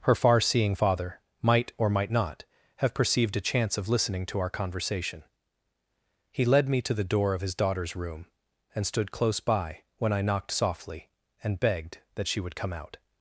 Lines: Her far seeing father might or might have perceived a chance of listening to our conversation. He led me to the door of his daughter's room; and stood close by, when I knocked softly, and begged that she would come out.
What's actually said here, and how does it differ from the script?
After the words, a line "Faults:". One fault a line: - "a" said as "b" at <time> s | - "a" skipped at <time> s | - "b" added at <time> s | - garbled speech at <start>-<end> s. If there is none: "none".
Her far seeing father might or might not have perceived a chance of listening to our conversation. He led me to the door of his daughter's room; and stood close by, when I knocked softly, and begged that she would come out.
Faults:
- "not" added at 2.1 s